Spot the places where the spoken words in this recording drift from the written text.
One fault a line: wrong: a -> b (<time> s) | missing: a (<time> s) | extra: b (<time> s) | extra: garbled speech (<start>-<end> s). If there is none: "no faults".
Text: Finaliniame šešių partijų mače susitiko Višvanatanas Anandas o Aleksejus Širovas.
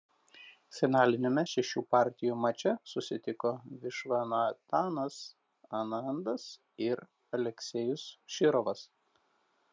wrong: o -> ir (6.9 s)